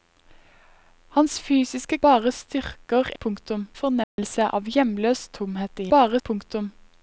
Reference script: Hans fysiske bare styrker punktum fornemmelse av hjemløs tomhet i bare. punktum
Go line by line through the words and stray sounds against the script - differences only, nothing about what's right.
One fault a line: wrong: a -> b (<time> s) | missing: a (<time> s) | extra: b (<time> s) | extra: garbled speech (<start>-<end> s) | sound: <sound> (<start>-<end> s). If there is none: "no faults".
sound: dropout (4.0-4.2 s)